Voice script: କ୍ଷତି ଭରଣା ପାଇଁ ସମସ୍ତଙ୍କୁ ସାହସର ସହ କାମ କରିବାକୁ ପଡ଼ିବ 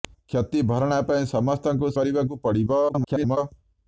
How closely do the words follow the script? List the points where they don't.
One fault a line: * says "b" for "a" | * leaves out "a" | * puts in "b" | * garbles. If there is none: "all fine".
* leaves out "ସାହସର ସହ କାମ"
* garbles